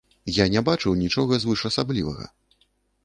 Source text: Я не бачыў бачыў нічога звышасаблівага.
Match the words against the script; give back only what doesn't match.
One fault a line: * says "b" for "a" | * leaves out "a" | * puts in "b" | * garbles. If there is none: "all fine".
* leaves out "бачыў"